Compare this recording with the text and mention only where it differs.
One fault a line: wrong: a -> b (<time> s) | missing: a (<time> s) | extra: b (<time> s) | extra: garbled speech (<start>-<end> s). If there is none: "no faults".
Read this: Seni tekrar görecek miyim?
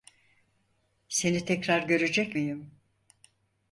no faults